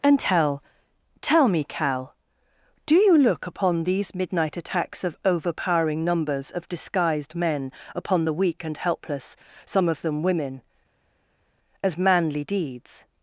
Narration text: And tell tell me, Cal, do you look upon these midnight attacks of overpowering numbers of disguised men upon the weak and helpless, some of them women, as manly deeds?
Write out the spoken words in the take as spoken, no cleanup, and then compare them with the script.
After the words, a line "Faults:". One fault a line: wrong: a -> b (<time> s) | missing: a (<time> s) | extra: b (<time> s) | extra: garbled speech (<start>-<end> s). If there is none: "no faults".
And tell tell me, Cal, do you look upon these midnight attacks of overpowering numbers of disguised men upon the weak and helpless, some of them women, as manly deeds?
Faults:
no faults